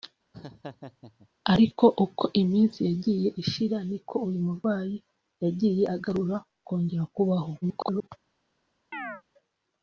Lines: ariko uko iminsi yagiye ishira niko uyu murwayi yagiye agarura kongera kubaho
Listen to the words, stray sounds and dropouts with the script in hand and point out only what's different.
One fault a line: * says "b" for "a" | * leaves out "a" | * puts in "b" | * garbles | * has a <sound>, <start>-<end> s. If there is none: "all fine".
* has a laugh, 0.3-1.3 s
* garbles
* has a chirp, 8.9-9.2 s